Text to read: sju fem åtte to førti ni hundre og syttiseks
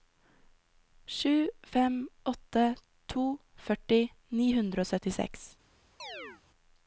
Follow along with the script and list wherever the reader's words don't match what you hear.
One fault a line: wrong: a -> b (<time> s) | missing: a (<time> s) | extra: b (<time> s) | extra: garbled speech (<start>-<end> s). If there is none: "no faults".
no faults